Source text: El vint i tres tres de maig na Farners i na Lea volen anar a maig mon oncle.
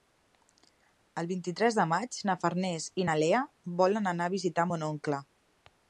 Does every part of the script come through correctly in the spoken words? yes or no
no